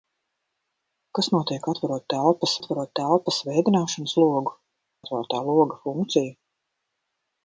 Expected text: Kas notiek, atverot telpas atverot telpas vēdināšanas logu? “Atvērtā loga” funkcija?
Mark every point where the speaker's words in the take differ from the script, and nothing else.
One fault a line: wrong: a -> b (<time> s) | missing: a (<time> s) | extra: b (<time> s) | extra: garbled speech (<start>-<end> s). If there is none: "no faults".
no faults